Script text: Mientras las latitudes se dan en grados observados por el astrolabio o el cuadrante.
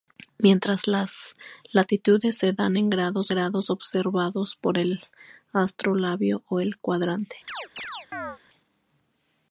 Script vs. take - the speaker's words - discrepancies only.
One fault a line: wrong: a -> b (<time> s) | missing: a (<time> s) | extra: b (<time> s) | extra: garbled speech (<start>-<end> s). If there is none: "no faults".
extra: grados (3.3 s)